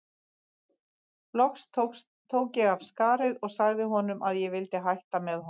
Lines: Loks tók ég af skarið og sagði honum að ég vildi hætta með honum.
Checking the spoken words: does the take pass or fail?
pass